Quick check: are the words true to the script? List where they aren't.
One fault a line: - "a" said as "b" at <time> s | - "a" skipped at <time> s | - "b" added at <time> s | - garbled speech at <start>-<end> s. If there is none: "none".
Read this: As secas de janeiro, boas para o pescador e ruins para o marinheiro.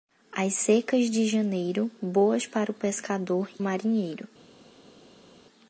- "e ruins para" skipped at 3.5 s